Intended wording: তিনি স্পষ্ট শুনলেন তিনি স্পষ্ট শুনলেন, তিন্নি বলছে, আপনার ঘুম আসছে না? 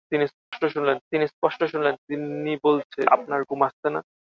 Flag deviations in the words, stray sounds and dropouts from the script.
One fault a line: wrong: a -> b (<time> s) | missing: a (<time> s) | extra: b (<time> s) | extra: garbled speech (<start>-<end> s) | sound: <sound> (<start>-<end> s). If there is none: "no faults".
sound: dropout (0.4-0.5 s)